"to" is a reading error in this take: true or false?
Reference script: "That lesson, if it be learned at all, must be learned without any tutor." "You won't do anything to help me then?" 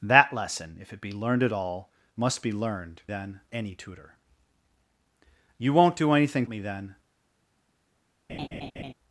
true